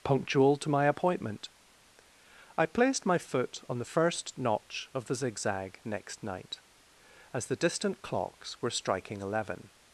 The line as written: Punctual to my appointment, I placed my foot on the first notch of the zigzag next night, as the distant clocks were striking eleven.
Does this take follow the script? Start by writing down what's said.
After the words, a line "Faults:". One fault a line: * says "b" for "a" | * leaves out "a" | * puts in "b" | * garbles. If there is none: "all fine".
Punctual to my appointment, I placed my foot on the first notch of the zigzag next night, as the distant clocks were striking eleven.
Faults:
all fine